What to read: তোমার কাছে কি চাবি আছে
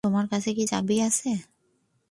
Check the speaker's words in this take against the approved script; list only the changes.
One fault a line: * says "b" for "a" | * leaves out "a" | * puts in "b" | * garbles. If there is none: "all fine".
all fine